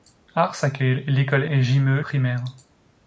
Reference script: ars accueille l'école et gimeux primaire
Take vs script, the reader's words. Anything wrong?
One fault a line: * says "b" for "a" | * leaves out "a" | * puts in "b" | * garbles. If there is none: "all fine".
all fine